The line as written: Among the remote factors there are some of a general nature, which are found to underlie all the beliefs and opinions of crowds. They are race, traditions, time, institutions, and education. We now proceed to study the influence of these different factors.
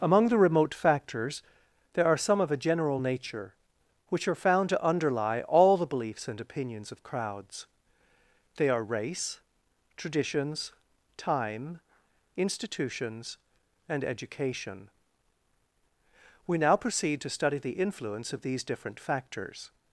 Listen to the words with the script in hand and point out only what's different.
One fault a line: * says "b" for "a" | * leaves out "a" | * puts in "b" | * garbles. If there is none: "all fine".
all fine